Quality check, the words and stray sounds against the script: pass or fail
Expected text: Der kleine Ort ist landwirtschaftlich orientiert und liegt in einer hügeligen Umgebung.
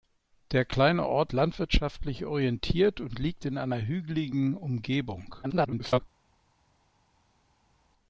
fail